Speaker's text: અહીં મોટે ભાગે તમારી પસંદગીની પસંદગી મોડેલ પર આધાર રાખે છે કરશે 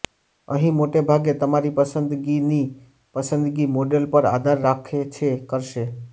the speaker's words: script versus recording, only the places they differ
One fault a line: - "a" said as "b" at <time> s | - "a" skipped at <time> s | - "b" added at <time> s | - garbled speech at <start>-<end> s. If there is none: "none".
none